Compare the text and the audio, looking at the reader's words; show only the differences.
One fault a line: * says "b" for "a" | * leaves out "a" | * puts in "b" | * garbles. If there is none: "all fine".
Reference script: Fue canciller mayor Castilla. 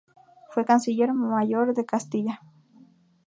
* puts in "de"